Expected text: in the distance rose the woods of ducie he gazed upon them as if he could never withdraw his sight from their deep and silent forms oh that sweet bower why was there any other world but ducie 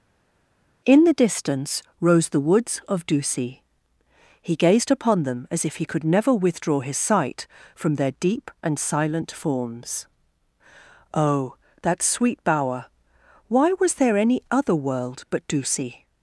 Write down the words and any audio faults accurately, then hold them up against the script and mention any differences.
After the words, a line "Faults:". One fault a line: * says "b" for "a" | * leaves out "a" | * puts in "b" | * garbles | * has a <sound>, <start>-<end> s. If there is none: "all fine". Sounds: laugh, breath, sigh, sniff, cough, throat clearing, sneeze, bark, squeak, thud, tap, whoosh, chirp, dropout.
in the distance rose the woods of ducie he gazed upon them as if he could never withdraw his sight from their deep and silent forms oh that sweet bower why was there any other world but ducie
Faults:
all fine